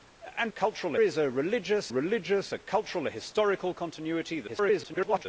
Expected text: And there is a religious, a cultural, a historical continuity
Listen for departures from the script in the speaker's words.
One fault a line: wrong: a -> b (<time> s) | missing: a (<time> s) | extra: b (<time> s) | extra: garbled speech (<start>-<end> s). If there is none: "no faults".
wrong: there -> cultural (0.5 s)
extra: religious (1.9 s)
extra: garbled speech (4.5-5.3 s)